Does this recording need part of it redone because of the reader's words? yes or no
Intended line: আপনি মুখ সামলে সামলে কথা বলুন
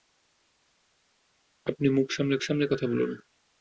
no